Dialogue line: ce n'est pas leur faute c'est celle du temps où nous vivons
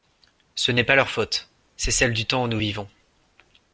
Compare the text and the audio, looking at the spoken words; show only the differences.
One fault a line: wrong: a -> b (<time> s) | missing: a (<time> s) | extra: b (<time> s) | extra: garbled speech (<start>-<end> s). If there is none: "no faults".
no faults